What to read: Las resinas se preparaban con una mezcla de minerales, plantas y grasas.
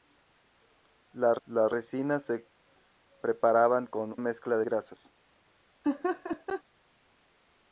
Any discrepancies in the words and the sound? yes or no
yes